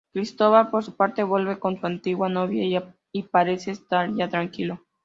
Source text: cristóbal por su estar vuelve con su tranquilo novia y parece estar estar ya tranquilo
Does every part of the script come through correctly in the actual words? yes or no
no